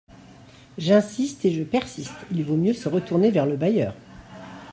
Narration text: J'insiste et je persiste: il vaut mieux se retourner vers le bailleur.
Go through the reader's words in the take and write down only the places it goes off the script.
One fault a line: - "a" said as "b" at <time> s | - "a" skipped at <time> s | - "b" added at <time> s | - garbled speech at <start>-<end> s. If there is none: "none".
none